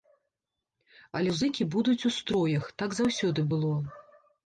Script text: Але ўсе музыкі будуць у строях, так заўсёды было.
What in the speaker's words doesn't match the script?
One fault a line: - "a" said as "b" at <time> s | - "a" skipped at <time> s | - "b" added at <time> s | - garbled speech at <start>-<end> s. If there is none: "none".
- "ўсе" skipped at 1.3 s